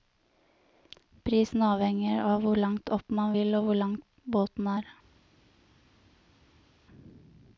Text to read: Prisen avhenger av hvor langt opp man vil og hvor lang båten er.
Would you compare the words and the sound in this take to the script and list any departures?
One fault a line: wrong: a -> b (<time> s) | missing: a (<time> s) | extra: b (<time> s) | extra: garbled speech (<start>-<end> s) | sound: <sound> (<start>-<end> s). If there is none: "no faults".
no faults